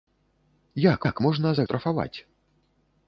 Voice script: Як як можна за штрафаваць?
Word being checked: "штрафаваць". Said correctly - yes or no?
yes